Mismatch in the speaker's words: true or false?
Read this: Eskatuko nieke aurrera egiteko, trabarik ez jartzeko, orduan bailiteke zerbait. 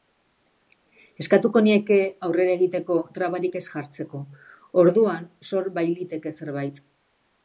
true